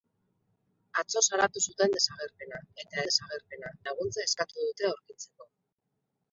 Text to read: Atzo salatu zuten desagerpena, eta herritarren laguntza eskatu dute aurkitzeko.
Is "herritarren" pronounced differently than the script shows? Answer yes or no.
yes